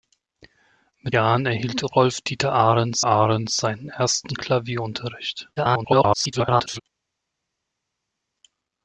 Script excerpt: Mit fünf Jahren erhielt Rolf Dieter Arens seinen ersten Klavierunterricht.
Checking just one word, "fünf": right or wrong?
wrong